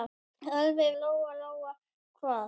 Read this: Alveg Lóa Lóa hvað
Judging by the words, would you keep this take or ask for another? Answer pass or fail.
pass